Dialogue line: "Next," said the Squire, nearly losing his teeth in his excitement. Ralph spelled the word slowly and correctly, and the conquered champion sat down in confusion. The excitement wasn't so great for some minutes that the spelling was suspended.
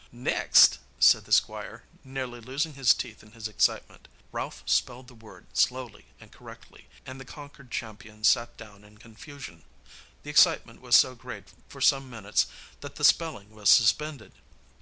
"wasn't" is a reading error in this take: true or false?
true